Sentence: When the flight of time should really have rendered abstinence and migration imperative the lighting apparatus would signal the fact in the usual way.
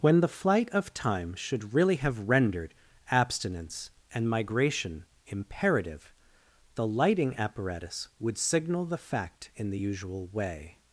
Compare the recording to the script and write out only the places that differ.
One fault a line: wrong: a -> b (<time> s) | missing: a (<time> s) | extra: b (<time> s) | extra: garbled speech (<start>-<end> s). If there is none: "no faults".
no faults